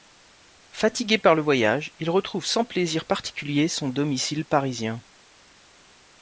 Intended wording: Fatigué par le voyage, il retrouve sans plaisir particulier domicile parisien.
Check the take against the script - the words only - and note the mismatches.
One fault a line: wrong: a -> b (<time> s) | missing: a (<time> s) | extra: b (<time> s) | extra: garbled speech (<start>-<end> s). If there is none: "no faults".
extra: son (3.7 s)